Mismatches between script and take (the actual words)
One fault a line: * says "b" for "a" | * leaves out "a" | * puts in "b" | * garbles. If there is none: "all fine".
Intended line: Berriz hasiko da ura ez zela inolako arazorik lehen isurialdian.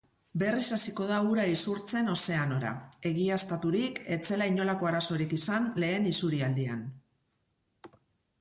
* puts in "isurtzen ozeanora egiaztaturik"
* puts in "izan"